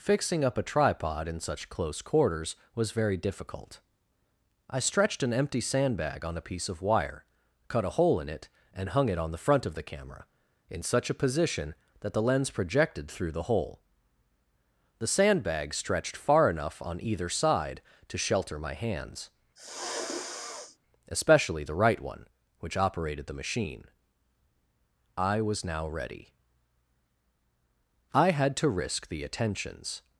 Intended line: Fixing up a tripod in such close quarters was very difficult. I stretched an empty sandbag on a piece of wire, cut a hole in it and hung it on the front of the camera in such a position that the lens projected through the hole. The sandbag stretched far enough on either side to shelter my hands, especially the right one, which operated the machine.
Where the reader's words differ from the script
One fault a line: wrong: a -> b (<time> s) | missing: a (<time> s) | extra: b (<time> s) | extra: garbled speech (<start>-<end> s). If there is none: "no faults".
extra: I was now ready I had to risk the attentions (25.2 s)